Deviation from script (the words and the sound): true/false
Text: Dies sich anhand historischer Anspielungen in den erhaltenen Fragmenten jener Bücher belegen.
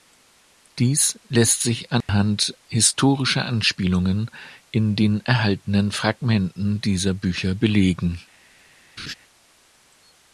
true